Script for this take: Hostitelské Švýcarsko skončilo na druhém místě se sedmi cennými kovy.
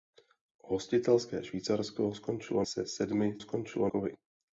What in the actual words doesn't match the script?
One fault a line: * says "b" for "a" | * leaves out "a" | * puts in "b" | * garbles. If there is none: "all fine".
* leaves out "na druhém místě"
* says "skončilo" for "cennými"